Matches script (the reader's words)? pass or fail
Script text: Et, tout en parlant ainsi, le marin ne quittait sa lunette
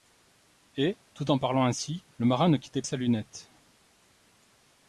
pass